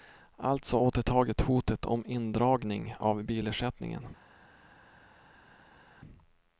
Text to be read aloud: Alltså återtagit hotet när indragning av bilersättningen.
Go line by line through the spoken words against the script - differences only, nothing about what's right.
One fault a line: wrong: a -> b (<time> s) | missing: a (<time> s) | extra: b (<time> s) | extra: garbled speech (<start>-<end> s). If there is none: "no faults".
wrong: när -> om (1.8 s)